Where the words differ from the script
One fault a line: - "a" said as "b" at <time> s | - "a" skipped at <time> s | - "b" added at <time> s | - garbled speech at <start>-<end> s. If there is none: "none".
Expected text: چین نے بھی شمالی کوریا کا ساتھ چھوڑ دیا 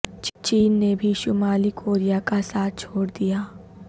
none